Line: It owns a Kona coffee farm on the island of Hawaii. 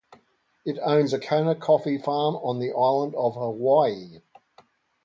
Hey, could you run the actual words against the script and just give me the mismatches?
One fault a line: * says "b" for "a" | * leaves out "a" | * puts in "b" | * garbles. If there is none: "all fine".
all fine